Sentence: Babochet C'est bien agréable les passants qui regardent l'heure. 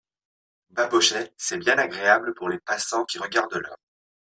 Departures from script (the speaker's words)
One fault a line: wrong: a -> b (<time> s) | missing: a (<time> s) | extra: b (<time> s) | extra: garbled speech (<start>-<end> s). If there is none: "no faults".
extra: pour (2.3 s)